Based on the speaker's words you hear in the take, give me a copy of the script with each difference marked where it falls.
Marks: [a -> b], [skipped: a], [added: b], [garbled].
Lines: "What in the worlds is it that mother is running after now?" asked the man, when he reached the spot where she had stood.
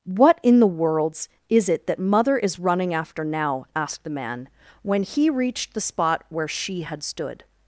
"What in the worlds is it that mother is running after now?" asked the man, when he reached the spot where she had stood.